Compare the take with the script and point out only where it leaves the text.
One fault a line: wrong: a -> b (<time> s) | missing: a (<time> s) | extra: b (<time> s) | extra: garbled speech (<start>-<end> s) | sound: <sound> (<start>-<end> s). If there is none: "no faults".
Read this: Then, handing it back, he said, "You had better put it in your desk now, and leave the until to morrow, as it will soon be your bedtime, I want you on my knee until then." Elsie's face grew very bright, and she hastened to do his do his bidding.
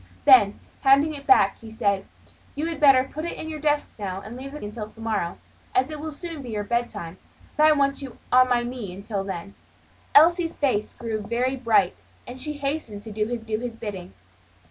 no faults